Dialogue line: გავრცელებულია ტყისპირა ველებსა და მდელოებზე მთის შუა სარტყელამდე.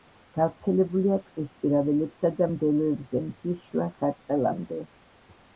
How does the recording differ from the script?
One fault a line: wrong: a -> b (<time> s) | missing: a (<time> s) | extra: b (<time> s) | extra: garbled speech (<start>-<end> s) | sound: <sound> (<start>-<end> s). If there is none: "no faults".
no faults